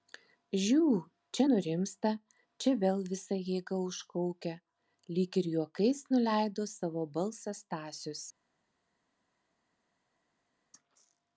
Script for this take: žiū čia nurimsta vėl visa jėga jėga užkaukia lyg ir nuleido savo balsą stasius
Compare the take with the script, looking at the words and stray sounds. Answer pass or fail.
fail